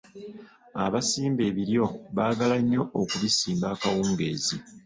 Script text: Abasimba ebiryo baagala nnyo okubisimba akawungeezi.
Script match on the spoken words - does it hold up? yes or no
yes